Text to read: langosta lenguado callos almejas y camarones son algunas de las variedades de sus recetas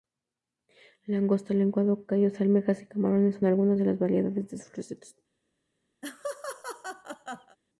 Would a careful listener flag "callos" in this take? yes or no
no